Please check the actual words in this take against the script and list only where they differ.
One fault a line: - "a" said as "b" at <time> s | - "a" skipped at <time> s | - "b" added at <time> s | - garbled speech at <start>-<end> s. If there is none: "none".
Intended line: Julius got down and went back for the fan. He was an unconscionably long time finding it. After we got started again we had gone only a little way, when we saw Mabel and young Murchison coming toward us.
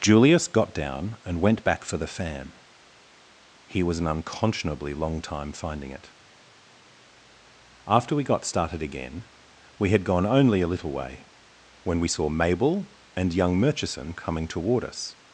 none